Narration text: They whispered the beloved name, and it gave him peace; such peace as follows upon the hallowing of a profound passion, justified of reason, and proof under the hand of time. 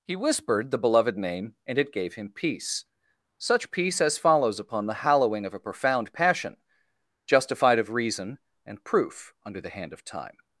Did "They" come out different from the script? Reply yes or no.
yes